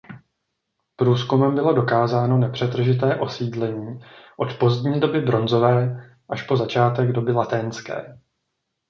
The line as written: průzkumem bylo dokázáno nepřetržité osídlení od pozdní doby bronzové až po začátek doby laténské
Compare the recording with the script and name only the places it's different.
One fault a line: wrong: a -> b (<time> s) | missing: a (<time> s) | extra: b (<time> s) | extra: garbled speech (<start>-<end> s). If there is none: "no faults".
no faults